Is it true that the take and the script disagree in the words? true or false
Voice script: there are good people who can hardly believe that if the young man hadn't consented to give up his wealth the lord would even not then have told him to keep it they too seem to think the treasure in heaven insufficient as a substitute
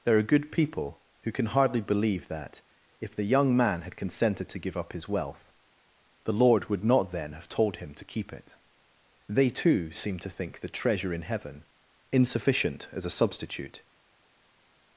true